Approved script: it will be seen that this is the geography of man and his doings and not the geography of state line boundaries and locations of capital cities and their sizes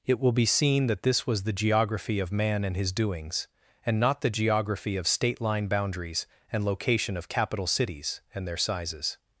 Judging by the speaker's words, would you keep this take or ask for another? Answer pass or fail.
fail